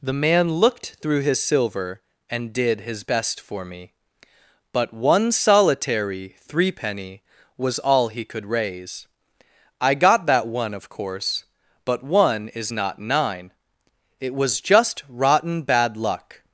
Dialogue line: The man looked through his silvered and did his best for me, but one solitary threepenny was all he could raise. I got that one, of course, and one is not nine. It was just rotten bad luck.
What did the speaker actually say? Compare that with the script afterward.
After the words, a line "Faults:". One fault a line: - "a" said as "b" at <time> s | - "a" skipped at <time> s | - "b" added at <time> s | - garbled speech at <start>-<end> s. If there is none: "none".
The man looked through his silver and did his best for me, but one solitary threepenny was all he could raise. I got that one, of course, but one is not nine. It was just rotten bad luck.
Faults:
- "silvered" said as "silver" at 1.4 s
- "and" said as "but" at 11.9 s